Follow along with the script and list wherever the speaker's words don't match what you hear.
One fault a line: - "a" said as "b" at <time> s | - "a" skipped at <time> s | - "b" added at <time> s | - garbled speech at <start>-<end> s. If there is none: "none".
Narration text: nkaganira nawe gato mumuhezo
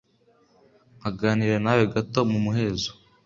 none